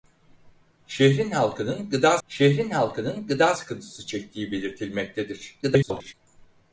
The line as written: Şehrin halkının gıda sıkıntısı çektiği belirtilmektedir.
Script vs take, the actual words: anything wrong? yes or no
yes